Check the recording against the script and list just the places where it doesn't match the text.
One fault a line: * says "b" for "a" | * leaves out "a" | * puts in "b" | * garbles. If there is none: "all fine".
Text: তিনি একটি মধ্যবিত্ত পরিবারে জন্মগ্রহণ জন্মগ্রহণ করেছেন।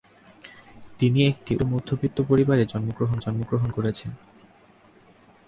all fine